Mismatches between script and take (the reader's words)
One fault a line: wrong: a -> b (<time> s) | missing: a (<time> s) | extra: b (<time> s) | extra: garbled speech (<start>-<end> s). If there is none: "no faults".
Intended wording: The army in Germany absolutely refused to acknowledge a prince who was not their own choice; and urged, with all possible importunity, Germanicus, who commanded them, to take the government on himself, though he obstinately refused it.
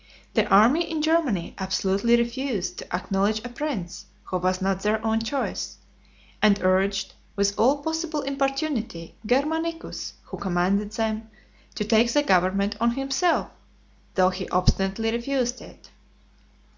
no faults